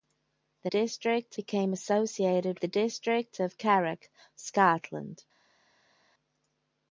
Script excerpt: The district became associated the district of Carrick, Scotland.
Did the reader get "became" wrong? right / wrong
right